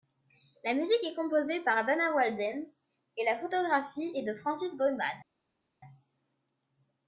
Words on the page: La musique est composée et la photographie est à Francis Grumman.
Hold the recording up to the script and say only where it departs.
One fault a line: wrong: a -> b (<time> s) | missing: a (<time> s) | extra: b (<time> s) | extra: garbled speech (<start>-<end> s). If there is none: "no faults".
extra: par Dana Walden (1.6 s)
wrong: à -> de (4.2 s)